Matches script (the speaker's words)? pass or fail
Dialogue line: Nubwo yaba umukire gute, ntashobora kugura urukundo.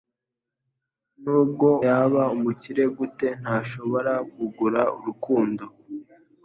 pass